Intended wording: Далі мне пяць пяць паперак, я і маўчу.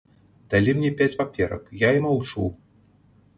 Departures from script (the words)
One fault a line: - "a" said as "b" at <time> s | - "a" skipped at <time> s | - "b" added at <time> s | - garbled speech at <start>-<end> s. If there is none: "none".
- "пяць" skipped at 1.2 s